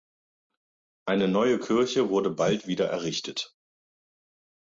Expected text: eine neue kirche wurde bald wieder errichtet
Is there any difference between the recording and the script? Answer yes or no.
no